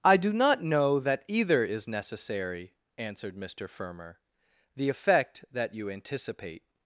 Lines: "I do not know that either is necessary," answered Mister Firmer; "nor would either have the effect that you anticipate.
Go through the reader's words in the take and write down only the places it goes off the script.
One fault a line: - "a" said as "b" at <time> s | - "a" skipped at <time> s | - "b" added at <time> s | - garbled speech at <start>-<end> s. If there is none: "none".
- "nor would either have" skipped at 4.2 s